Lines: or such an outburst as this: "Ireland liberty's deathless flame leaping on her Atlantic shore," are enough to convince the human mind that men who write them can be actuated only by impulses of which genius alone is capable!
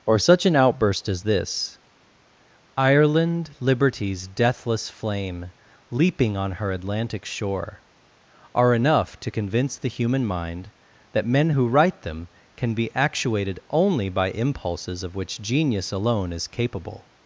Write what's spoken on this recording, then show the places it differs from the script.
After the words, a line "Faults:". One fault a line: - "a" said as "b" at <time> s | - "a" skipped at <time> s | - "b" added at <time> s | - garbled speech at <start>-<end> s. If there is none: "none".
or such an outburst as this: "Ireland liberty's deathless flame leaping on her Atlantic shore," are enough to convince the human mind that men who write them can be actuated only by impulses of which genius alone is capable!
Faults:
none